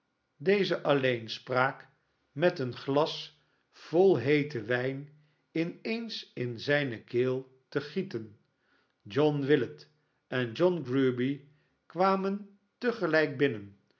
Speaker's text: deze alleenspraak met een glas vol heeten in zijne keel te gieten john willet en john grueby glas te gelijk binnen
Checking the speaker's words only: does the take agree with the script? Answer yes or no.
no